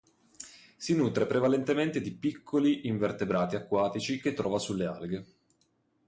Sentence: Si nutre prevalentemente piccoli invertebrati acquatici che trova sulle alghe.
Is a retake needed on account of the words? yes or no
yes